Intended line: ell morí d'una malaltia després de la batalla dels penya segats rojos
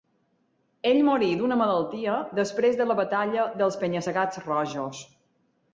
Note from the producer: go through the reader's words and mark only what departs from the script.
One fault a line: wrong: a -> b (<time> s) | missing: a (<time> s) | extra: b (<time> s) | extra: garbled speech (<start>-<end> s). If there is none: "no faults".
no faults